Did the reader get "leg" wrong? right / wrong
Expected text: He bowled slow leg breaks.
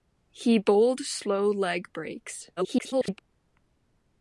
right